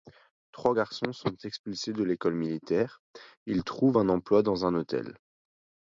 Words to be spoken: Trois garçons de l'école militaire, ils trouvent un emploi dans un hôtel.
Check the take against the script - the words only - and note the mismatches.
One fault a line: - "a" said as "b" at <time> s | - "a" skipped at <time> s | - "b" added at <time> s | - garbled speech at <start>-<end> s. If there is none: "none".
- "sont expulsés" added at 1.1 s